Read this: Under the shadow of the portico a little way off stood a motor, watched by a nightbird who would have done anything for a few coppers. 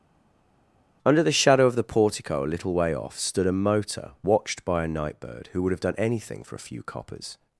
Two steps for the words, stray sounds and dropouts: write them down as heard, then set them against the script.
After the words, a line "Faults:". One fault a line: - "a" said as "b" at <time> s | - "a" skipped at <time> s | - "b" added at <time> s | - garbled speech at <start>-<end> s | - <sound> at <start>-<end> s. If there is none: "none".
Under the shadow of the portico a little way off stood a motor, watched by a nightbird who would have done anything for a few coppers.
Faults:
none